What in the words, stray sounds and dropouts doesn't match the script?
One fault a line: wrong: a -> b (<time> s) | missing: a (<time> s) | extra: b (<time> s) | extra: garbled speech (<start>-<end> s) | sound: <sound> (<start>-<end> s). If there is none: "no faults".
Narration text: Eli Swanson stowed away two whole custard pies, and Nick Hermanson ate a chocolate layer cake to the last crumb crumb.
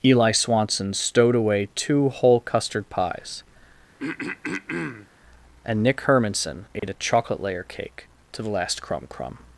sound: throat clearing (4.0-5.1 s)
sound: dropout (6.8-6.8 s)